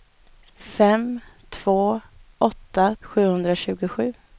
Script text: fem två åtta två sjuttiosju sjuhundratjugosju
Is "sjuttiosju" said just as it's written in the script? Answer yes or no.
no